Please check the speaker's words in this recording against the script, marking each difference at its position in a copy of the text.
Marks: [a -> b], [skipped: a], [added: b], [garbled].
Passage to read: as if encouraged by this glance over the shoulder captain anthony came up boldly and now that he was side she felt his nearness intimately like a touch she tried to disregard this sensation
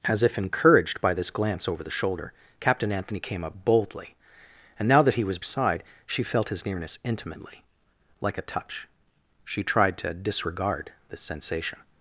as if encouraged by this glance over the shoulder captain anthony came up boldly and now that he was side she felt his nearness intimately like a touch she tried to disregard this sensation